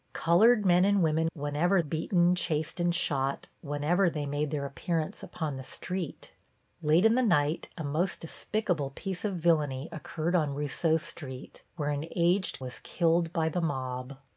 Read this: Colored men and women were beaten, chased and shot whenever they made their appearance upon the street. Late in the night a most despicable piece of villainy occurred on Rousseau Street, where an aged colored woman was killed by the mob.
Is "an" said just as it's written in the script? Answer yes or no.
yes